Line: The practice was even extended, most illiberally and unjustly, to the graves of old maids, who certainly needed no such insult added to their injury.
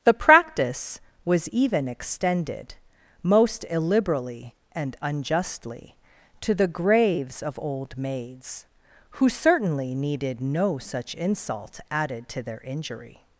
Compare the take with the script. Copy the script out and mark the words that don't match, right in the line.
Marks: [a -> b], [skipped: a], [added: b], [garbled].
The practice was even extended, most illiberally and unjustly, to the graves of old maids, who certainly needed no such insult added to their injury.